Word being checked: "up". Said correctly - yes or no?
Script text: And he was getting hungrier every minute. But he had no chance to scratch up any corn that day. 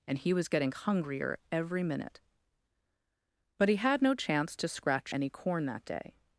no